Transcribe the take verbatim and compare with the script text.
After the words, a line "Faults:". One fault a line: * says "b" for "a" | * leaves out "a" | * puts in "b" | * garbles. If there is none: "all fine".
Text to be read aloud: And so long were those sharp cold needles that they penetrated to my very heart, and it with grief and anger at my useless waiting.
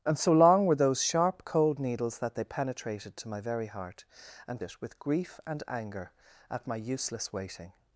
And so long were those sharp cold needles that they penetrated to my very heart, and it with grief and anger at my useless waiting.
Faults:
all fine